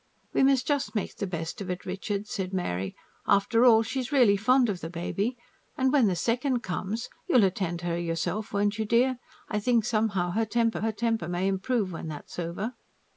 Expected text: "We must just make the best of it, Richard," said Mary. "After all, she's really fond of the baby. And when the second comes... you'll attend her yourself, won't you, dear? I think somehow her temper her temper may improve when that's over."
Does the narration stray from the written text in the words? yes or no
no